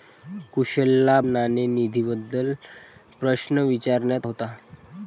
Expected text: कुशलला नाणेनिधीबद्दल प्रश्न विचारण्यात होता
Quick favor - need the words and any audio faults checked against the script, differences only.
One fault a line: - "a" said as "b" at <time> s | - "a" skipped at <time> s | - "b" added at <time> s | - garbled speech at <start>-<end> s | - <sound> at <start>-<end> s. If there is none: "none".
none